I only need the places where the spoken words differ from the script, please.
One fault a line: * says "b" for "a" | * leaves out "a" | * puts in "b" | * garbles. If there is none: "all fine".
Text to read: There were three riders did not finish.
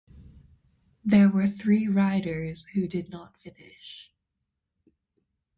* puts in "who"